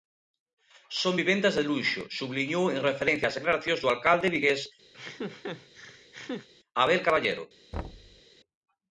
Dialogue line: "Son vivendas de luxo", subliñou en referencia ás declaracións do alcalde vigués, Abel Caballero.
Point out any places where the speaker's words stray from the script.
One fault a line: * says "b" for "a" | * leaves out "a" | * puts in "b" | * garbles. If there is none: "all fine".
all fine